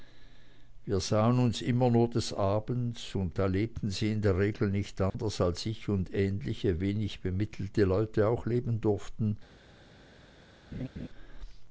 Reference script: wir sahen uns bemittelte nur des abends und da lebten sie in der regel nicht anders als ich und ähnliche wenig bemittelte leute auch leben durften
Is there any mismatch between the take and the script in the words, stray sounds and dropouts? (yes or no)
yes